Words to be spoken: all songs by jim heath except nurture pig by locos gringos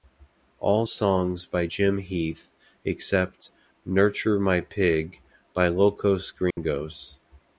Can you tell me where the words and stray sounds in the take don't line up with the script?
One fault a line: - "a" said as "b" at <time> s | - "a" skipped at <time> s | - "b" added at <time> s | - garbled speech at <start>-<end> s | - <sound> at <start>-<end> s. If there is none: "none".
- "my" added at 4.4 s
- dropout at 6.5-6.6 s